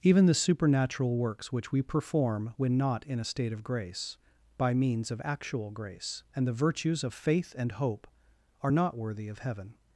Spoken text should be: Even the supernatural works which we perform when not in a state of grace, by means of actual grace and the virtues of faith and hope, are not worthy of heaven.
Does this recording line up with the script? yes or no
yes